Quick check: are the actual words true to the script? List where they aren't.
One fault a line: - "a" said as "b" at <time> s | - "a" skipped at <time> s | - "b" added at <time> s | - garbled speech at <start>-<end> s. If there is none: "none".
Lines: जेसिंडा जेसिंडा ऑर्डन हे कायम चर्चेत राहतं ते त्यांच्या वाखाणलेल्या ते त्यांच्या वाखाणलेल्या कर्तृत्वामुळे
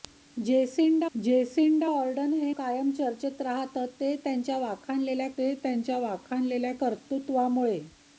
none